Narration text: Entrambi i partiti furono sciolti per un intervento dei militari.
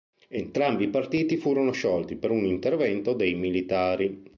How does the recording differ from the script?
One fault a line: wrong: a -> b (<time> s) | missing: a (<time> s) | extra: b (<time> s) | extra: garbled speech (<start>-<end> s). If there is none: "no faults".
no faults